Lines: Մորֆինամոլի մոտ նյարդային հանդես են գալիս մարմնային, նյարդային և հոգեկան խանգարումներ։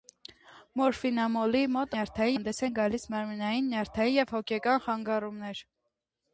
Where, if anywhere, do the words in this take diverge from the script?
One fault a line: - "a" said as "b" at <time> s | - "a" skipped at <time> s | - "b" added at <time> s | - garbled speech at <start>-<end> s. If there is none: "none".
none